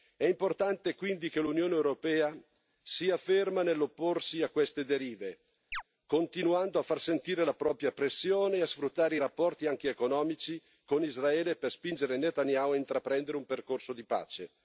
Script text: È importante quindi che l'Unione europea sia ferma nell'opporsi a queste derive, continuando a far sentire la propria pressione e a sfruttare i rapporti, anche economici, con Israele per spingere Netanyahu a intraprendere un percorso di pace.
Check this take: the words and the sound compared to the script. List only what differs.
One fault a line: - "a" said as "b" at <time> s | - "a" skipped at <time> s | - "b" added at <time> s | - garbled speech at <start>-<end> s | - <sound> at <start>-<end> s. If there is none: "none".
- chirp at 5.7-5.8 s